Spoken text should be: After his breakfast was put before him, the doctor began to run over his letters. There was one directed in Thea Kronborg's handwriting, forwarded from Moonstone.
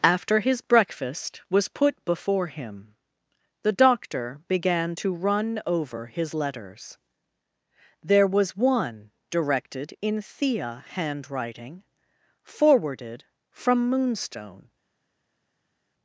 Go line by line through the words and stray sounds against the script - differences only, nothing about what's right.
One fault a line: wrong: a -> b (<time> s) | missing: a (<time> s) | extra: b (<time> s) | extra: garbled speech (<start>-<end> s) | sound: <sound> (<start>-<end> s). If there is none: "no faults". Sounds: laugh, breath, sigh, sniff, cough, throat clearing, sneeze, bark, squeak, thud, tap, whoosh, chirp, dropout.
missing: Kronborg's (10.8 s)